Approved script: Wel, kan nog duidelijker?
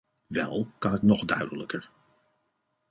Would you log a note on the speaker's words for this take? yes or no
yes